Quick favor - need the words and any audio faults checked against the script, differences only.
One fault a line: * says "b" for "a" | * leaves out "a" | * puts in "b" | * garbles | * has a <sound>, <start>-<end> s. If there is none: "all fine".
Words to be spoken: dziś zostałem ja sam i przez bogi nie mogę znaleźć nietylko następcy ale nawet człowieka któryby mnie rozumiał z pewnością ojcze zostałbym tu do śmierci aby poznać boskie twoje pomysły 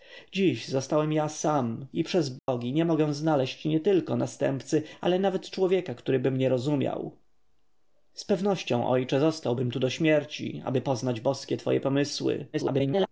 * has a dropout, 2.4-2.5 s
* garbles